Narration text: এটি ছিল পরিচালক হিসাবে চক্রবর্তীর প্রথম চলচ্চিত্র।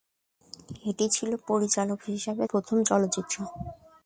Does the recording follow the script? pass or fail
fail